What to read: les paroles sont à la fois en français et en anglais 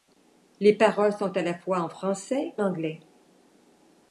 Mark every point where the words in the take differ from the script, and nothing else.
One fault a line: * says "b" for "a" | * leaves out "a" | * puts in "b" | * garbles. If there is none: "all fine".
* leaves out "et en"